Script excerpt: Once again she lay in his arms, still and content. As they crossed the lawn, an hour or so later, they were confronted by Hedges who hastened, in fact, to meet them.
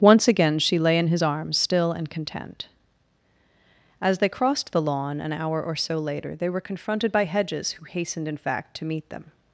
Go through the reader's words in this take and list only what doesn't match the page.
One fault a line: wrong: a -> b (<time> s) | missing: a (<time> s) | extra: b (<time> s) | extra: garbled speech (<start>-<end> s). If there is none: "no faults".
no faults